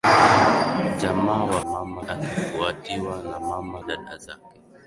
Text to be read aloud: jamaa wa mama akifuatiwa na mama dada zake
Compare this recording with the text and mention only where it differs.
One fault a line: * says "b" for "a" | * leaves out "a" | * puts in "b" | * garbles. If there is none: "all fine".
all fine